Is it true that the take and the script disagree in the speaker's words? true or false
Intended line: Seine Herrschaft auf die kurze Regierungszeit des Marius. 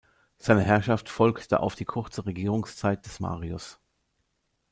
true